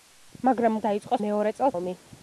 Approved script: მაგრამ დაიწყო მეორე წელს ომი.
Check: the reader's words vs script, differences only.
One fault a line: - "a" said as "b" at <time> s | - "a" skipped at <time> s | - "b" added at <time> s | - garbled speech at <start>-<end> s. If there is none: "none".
none